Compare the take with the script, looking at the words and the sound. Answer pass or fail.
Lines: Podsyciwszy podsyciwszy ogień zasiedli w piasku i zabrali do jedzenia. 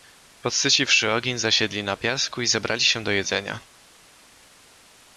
fail